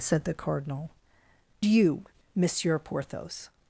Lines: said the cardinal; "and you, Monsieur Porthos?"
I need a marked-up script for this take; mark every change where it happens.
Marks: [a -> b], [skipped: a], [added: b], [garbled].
said the cardinal; [skipped: "and] you, Monsieur Porthos?"